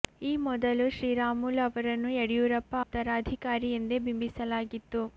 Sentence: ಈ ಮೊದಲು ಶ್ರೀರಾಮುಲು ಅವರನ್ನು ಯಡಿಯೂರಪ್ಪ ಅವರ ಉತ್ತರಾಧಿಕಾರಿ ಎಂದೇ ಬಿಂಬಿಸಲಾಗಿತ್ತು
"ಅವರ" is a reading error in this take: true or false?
true